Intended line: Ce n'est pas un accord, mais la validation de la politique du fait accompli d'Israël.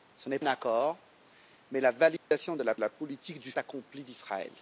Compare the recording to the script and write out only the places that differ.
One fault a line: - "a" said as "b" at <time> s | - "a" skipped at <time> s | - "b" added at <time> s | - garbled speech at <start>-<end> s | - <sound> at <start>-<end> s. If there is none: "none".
- "pas" skipped at 0.4 s
- dropout at 2.2-2.3 s
- "la" added at 2.8 s
- "fait" skipped at 3.5 s